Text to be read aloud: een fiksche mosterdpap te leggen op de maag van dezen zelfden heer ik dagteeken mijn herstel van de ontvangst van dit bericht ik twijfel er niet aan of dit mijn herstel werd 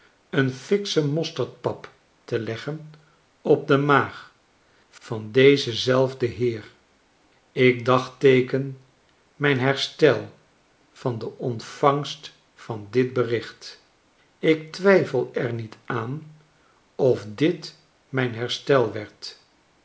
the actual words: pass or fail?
pass